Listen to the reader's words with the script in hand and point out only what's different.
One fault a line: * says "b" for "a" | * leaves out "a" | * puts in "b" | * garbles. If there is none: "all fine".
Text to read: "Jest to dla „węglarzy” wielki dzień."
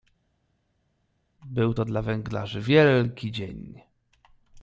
* says "Był" for "Jest"